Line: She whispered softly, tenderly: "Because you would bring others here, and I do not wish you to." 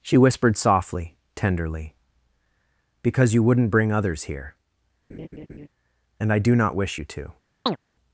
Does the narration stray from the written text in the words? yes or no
yes